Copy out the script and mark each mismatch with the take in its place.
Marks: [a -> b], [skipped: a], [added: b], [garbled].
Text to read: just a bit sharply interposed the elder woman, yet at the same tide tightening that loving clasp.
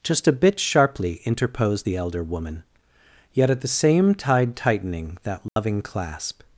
just a bit sharply interposed the elder woman, yet at the same tide tightening that loving clasp.